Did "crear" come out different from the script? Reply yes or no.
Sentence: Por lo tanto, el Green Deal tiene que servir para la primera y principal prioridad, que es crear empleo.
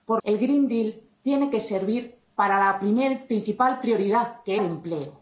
yes